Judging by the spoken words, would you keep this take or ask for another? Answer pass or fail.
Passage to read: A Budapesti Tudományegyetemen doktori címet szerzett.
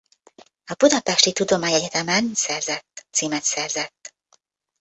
fail